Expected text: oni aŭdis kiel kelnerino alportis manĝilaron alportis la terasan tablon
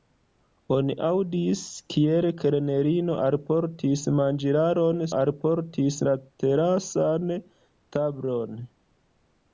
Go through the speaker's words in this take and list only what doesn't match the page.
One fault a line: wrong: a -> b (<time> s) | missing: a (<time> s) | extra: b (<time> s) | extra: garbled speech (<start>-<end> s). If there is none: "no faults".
no faults